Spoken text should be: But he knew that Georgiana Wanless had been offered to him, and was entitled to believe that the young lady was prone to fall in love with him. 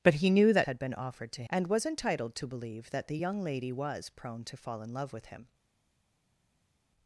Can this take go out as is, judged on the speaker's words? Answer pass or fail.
fail